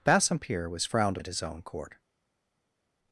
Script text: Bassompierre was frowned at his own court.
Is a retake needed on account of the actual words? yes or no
no